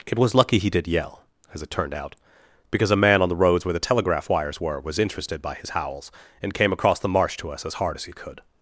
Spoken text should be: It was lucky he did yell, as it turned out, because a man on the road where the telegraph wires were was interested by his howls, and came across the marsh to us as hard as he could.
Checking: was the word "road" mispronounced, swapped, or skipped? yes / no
yes